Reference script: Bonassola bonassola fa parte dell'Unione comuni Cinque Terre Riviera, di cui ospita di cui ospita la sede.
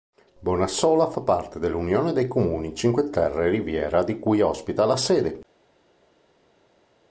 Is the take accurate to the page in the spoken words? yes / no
no